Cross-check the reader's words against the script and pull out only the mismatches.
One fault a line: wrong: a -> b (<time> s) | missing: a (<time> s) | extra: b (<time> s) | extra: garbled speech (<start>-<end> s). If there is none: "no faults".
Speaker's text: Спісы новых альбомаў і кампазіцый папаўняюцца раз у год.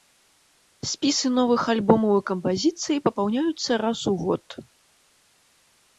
no faults